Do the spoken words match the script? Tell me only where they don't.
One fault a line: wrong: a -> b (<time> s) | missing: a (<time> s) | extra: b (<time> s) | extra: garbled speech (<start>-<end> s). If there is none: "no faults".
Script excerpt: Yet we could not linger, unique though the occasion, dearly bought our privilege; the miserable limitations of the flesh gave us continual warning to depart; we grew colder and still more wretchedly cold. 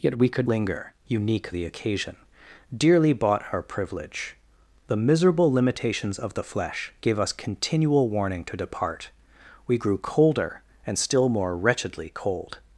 missing: not (0.5 s)
missing: though (1.5 s)